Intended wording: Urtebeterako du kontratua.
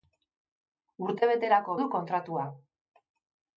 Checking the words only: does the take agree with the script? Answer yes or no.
yes